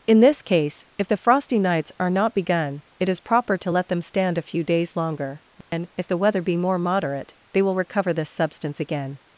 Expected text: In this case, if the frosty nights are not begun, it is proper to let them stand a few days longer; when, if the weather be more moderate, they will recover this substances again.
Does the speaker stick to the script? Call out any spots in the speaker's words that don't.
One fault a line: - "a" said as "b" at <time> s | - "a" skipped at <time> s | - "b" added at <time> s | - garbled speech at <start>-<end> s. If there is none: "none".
- "substances" said as "substance" at 8.3 s